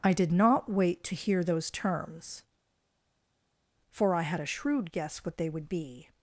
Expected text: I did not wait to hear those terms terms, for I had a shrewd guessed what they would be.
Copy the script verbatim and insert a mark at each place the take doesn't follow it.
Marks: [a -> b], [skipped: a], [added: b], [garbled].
I did not wait to hear those terms [skipped: terms,] for I had a shrewd [guessed -> guess] what they would be.